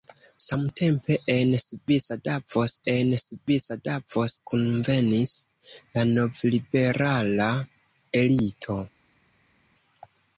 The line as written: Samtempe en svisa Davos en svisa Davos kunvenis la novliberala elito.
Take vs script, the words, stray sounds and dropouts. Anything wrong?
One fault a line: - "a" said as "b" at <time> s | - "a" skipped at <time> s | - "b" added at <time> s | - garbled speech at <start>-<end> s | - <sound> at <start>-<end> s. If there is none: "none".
none